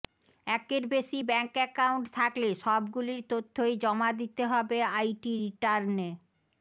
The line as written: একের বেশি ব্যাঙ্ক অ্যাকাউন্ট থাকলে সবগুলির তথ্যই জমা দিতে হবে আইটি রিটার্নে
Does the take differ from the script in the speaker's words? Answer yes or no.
no